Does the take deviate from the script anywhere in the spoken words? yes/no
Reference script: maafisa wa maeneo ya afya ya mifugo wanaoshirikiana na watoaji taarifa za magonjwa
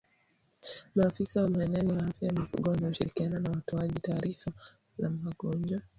no